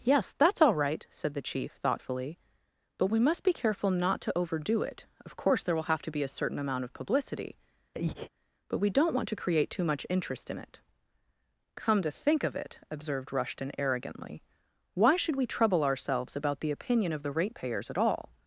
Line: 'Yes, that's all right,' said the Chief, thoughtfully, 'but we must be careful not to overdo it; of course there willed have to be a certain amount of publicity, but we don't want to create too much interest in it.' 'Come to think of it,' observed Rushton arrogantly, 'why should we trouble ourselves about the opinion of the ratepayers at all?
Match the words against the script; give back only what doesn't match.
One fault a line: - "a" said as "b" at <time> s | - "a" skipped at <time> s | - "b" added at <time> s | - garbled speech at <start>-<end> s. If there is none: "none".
- "willed" said as "will" at 5.8 s